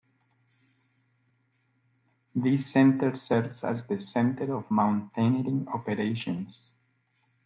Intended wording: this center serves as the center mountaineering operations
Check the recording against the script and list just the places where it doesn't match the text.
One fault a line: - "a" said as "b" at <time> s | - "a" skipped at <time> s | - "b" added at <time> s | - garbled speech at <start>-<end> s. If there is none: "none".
- "of" added at 4.5 s